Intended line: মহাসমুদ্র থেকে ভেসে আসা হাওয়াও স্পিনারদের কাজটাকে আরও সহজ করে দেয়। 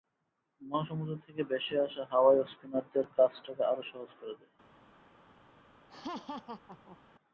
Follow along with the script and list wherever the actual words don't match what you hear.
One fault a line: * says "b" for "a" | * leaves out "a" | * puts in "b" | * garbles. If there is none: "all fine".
all fine